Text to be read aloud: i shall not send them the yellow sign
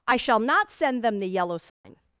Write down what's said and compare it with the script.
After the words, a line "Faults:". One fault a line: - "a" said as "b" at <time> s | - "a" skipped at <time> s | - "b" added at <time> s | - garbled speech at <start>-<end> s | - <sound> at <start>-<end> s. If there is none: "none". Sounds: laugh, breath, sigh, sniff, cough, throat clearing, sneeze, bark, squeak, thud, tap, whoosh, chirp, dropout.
i shall not send them the yellow sign
Faults:
- dropout at 1.7-1.8 s